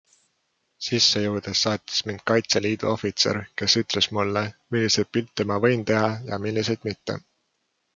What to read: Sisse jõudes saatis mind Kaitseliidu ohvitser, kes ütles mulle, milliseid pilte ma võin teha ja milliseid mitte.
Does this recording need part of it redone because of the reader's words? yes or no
no